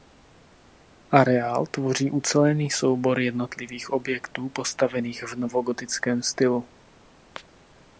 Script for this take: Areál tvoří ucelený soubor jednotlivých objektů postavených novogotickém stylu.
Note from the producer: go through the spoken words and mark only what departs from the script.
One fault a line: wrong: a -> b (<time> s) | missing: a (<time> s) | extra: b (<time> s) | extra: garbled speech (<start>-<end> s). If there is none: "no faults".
extra: v (5.2 s)